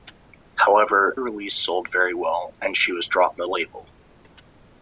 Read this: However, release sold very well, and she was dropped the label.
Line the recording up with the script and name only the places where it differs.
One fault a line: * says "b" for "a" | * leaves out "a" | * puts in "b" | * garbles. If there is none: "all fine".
all fine